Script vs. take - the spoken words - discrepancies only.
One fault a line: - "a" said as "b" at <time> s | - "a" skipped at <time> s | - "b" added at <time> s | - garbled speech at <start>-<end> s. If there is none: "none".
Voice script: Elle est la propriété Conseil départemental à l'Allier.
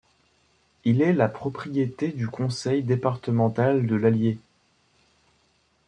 - "Elle" said as "Il" at 0.8 s
- "du" added at 2.1 s
- "à" said as "de" at 3.9 s